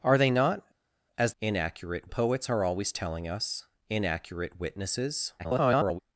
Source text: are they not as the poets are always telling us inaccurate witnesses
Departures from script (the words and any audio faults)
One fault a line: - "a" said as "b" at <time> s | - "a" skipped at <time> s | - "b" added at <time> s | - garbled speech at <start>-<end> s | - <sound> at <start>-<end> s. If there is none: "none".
- "the" said as "inaccurate" at 1.4 s
- garbled speech at 5.4-6.0 s